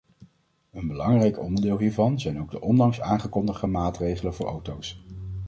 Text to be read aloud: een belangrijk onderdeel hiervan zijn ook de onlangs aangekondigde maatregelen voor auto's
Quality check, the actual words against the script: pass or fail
pass